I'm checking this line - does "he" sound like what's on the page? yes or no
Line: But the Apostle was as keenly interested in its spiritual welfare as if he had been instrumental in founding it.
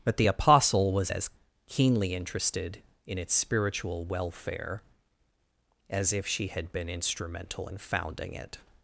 no